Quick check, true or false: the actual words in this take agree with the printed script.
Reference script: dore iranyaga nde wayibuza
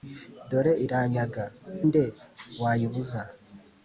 true